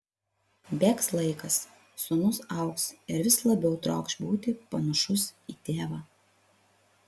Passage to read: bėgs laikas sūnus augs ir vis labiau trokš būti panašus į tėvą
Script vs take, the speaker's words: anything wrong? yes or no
no